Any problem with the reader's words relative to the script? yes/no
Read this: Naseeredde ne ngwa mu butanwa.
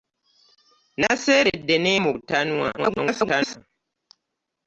yes